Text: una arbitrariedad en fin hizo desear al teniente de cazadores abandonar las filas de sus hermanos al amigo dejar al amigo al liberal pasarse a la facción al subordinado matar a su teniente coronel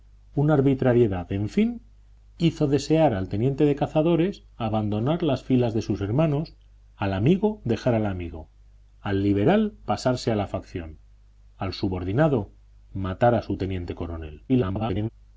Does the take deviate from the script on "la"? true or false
false